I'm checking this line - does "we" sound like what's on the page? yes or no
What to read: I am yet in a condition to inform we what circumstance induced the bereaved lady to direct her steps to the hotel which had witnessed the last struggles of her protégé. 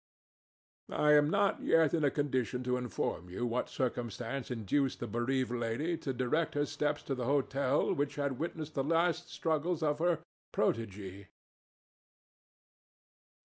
no